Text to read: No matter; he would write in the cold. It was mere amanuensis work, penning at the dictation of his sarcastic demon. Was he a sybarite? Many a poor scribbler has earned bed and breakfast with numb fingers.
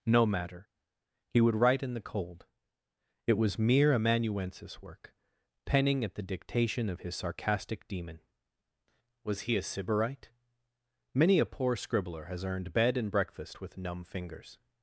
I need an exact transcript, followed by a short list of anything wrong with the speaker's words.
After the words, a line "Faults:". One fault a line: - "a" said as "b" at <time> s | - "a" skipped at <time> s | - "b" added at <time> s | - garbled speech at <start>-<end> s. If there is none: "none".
No matter; he would write in the cold. It was mere amanuensis work, penning at the dictation of his sarcastic demon. Was he a sybarite? Many a poor scribbler has earned bed and breakfast with numb fingers.
Faults:
none